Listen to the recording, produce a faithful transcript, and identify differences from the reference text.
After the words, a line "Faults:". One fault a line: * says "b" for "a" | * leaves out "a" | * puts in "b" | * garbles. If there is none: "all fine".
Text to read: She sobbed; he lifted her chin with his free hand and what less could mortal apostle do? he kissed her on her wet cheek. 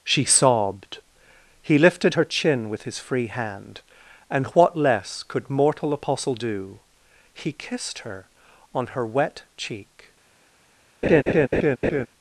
She sobbed; he lifted her chin with his free hand and what less could mortal apostle do? he kissed her on her wet cheek.
Faults:
all fine